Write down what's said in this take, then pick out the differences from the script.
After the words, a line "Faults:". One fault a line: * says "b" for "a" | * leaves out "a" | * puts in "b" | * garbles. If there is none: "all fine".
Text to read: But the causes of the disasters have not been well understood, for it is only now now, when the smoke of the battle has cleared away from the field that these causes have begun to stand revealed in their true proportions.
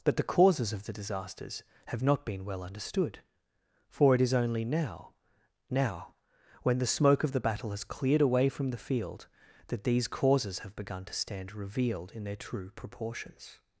But the causes of the disasters have not been well understood, for it is only now now, when the smoke of the battle has cleared away from the field that these causes have begun to stand revealed in their true proportions.
Faults:
all fine